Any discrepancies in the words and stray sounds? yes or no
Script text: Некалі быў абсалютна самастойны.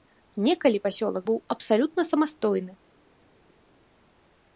yes